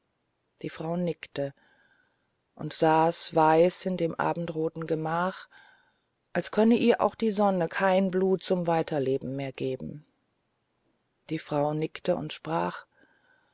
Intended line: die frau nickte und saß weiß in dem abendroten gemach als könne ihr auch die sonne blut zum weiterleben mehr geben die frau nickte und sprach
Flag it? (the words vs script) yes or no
yes